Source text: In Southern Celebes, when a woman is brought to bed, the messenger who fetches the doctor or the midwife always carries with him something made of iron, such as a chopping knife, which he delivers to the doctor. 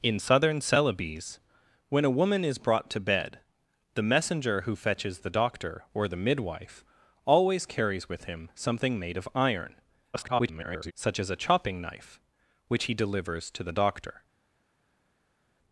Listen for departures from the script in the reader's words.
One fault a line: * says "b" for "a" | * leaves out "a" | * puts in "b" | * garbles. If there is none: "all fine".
* garbles